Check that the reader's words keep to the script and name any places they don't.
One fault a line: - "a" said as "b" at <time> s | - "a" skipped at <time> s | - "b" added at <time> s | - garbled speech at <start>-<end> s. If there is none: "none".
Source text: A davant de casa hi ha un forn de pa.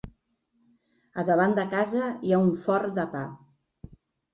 none